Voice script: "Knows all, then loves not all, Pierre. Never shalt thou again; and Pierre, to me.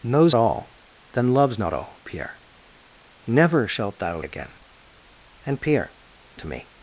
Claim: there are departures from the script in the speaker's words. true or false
false